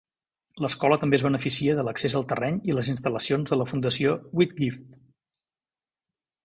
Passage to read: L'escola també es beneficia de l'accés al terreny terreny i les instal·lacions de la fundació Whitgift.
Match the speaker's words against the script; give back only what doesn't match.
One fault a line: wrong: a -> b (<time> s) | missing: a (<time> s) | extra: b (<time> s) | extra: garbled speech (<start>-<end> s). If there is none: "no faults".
missing: terreny (2.6 s)